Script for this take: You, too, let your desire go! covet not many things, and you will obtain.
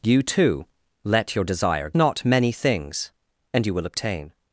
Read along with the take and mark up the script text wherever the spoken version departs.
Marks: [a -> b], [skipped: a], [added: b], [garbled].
You, too, let your desire [skipped: go! covet] not many things, and you will obtain.